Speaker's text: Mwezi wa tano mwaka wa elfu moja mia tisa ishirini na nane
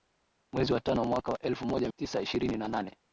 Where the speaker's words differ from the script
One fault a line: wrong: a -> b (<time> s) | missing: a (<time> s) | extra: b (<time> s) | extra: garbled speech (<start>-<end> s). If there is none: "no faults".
missing: mia (1.9 s)